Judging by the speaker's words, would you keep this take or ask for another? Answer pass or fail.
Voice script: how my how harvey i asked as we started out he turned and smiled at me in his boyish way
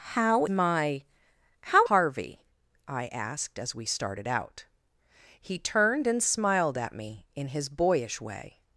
pass